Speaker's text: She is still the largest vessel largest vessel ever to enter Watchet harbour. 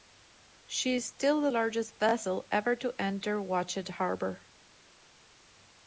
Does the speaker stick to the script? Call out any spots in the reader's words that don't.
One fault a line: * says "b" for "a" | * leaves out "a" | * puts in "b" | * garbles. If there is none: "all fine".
* leaves out "largest vessel"